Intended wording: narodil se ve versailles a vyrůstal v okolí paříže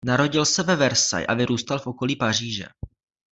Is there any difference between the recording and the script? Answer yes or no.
no